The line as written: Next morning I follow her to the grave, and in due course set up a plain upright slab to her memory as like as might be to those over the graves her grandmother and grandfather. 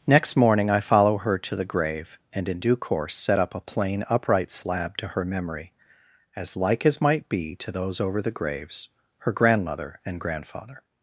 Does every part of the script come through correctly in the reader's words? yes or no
yes